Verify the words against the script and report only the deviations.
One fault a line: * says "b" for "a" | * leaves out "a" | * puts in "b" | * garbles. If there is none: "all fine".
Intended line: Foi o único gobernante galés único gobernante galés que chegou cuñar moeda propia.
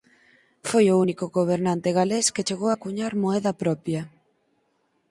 * leaves out "único gobernante galés"
* puts in "a"